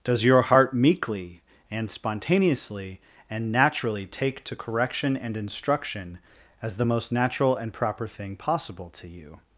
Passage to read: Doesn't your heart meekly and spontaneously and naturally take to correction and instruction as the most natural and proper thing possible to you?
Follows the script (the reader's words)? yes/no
no